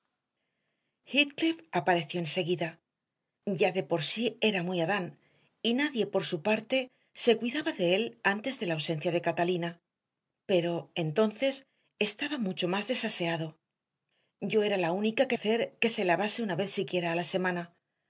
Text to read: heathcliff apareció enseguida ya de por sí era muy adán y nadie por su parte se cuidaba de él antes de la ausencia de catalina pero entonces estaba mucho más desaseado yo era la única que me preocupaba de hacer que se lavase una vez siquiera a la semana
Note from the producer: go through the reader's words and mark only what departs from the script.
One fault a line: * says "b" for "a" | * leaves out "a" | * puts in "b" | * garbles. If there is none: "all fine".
* leaves out "me preocupaba de"